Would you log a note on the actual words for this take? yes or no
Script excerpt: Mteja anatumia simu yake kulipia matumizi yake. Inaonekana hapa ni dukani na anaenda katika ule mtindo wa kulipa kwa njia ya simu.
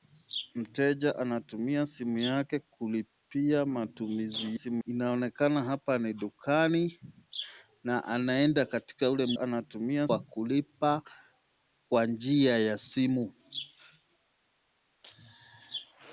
yes